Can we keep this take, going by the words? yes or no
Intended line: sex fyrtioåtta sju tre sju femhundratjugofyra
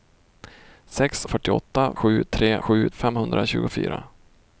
yes